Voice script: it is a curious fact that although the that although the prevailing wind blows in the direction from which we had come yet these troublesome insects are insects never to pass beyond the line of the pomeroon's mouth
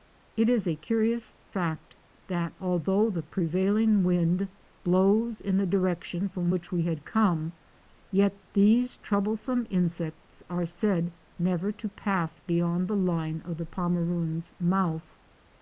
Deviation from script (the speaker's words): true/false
true